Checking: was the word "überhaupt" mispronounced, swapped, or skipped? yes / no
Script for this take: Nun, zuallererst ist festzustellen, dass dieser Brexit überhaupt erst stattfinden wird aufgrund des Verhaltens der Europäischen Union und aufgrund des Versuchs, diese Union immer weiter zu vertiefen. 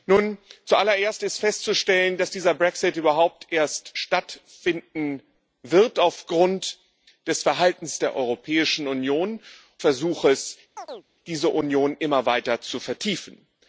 no